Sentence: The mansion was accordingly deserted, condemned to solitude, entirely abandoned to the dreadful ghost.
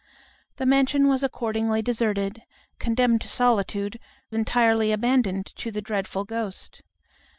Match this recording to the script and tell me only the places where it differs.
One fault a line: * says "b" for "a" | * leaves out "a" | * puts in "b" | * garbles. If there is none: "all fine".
all fine